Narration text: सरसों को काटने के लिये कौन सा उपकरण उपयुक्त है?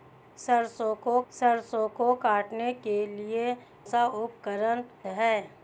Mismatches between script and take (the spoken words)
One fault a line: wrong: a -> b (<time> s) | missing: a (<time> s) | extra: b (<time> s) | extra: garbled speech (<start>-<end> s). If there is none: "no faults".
extra: सरसों को (1.3 s)
missing: कौन (3.6 s)
missing: उपयुक्त (4.8 s)